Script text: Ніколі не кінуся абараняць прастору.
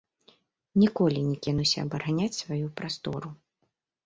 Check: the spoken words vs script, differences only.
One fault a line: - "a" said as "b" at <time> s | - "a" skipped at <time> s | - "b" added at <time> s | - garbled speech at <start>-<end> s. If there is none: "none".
- "сваю" added at 2.4 s